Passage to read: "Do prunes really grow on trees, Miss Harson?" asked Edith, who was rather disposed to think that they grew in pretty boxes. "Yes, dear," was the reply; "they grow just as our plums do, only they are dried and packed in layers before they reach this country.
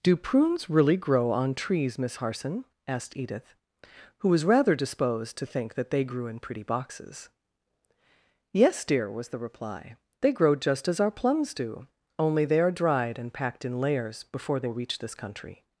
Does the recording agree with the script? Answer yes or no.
yes